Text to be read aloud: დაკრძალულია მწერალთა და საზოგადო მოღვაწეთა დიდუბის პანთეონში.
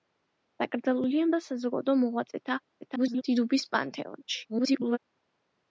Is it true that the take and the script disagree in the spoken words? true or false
true